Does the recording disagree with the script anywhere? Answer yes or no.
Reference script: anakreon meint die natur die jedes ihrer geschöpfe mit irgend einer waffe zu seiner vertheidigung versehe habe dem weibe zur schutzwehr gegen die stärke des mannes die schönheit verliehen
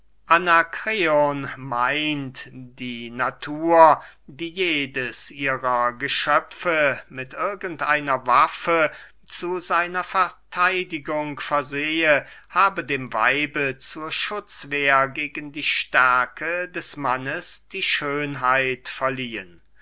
no